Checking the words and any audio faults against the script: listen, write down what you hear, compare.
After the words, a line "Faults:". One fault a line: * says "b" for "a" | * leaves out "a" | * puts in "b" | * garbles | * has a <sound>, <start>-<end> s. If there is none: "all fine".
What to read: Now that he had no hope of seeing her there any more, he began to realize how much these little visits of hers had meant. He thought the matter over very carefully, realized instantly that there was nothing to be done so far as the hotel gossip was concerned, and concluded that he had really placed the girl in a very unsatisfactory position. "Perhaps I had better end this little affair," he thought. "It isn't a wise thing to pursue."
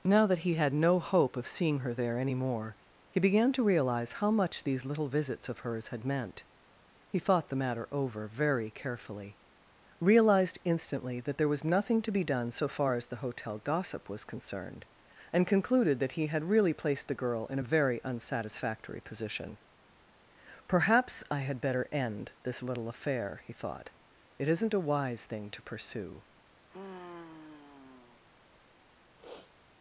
Now that he had no hope of seeing her there any more, he began to realize how much these little visits of hers had meant. He thought the matter over very carefully, realized instantly that there was nothing to be done so far as the hotel gossip was concerned, and concluded that he had really placed the girl in a very unsatisfactory position. "Perhaps I had better end this little affair," he thought. "It isn't a wise thing to pursue."
Faults:
* has a sigh, 26.7-28.2 s
* has a sniff, 29.2-29.5 s